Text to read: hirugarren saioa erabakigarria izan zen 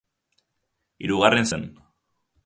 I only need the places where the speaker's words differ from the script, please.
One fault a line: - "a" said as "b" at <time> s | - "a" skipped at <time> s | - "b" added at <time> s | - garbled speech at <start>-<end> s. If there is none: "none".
- "saioa erabakigarria izan" skipped at 1.4 s